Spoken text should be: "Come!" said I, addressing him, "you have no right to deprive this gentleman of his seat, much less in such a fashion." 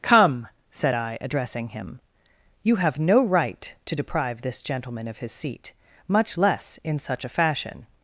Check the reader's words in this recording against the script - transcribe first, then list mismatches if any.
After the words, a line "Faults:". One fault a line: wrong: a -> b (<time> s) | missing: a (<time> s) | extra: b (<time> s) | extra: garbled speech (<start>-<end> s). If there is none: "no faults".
"Come!" said I, addressing him, "you have no right to deprive this gentleman of his seat, much less in such a fashion."
Faults:
no faults